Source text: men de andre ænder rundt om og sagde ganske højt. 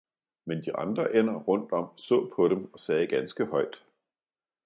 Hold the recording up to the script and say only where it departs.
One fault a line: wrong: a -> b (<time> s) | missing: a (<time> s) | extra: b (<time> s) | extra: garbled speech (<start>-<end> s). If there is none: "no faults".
extra: så på dem (2.0 s)